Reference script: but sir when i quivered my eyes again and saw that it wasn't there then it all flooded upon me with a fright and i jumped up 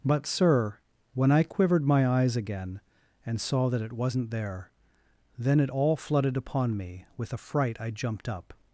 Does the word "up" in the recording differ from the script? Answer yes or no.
no